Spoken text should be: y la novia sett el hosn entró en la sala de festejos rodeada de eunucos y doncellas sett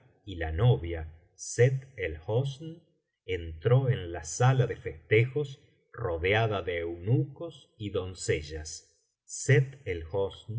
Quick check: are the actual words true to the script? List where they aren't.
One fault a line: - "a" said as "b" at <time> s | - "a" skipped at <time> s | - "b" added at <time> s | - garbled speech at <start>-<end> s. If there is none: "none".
none